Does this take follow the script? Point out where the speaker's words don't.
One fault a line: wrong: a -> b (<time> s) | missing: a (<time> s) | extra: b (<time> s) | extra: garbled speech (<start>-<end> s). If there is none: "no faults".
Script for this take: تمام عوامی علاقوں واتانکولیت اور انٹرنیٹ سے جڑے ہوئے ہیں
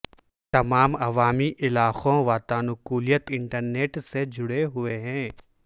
missing: اور (3.3 s)